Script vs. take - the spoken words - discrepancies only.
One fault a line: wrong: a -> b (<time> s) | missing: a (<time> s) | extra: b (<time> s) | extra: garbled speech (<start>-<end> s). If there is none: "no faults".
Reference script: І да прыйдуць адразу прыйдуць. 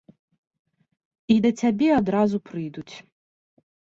wrong: прыйдуць -> цябе (1.6 s)